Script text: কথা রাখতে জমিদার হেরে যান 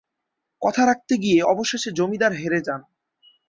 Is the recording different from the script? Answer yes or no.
yes